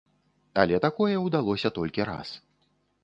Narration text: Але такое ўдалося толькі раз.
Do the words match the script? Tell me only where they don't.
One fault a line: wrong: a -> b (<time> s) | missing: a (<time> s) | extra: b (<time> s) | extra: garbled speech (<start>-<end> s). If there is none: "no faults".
no faults